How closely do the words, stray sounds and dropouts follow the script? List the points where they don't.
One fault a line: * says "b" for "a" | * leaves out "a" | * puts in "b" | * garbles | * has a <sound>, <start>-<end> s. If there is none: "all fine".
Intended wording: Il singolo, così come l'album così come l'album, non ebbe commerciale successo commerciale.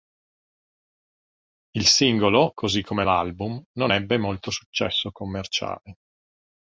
* leaves out "così come l'album"
* says "molto" for "commerciale"